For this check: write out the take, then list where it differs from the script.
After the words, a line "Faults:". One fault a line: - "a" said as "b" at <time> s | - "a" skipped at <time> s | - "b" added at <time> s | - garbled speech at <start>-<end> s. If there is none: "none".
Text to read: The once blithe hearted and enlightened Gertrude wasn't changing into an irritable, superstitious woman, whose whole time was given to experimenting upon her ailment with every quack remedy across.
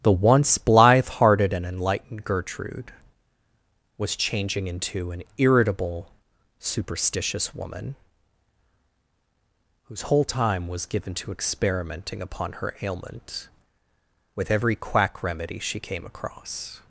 The once blithe hearted and enlightened Gertrude was changing into an irritable, superstitious woman, whose whole time was given to experimenting upon her ailment with every quack remedy she came across.
Faults:
- "wasn't" said as "was" at 4.0 s
- "she came" added at 15.6 s